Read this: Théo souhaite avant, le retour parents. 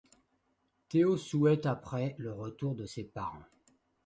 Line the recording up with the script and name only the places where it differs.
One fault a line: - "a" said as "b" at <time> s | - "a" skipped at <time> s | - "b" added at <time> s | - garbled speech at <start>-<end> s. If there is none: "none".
- "avant" said as "après" at 1.7 s
- "de ses" added at 2.7 s